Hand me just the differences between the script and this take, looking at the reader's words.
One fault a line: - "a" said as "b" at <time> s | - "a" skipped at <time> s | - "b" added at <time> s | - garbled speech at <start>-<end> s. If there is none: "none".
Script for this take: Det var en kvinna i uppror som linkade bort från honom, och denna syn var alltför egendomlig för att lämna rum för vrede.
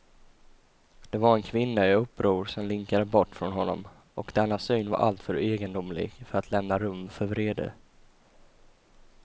none